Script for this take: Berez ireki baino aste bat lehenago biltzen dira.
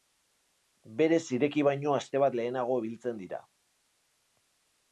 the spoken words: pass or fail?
pass